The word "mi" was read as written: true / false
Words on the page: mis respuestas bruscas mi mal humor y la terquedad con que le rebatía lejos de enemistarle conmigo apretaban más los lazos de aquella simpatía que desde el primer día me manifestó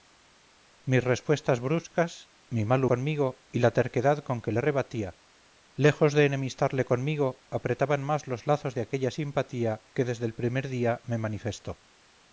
true